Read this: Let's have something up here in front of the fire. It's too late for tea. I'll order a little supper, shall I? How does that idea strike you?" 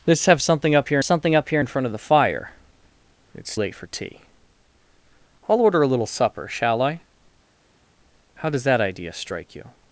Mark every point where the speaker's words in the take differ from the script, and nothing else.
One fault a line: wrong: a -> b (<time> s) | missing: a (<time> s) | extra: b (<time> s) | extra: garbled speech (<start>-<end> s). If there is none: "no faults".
extra: something up here (1.0 s)
missing: too (3.6 s)